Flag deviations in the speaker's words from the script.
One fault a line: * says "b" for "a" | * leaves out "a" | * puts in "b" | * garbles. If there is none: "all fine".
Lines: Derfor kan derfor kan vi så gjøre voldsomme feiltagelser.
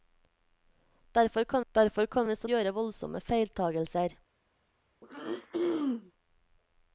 all fine